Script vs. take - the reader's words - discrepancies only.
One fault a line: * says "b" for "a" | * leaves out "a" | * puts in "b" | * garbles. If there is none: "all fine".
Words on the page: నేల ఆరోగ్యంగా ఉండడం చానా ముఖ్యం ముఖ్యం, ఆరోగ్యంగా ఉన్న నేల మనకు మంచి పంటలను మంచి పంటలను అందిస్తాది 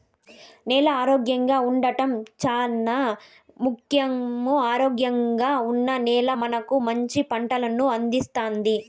* leaves out "ముఖ్యం"
* leaves out "మంచి పంటలను"